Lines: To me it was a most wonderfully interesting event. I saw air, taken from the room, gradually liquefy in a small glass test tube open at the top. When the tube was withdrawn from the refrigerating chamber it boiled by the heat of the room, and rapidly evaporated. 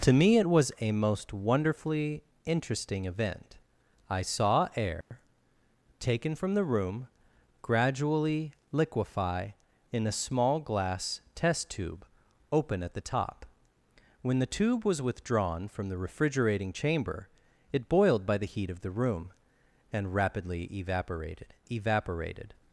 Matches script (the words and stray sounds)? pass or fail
fail